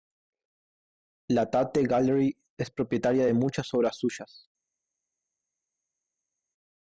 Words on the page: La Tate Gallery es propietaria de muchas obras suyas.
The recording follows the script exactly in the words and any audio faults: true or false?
true